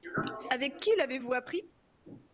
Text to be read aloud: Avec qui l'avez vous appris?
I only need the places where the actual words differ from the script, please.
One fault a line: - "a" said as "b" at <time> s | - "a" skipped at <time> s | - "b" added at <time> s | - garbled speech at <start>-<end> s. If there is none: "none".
none